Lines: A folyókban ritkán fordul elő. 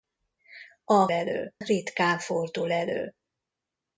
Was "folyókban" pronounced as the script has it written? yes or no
no